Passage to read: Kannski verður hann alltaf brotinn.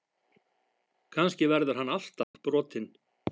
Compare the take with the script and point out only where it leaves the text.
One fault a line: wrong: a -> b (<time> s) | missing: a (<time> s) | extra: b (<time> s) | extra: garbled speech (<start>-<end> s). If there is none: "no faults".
no faults